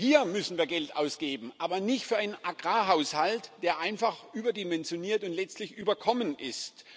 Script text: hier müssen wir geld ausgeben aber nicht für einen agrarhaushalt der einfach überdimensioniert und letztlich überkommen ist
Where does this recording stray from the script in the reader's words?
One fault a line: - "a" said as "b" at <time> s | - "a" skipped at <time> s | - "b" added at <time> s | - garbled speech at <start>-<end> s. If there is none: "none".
none